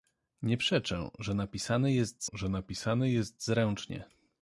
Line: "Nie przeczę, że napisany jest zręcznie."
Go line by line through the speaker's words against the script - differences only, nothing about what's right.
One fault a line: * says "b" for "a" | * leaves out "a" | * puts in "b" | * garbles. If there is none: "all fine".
* puts in "że napisany jest"